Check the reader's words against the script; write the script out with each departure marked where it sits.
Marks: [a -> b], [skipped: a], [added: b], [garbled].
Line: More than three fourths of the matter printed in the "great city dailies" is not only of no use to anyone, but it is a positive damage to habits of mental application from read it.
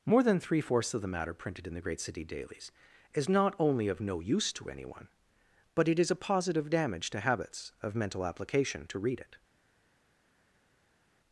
More than three fourths of the matter printed in the "great city dailies" is not only of no use to anyone, but it is a positive damage to habits of mental application [from -> to] read it.